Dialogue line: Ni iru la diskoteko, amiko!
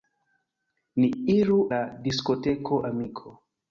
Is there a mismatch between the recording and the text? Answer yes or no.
no